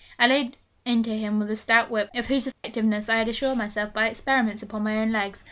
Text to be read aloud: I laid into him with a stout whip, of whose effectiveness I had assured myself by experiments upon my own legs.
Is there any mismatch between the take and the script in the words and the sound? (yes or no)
yes